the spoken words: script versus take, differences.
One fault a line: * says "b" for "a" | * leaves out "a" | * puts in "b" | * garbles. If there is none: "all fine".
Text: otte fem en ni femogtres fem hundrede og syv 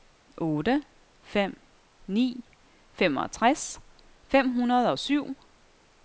* leaves out "en"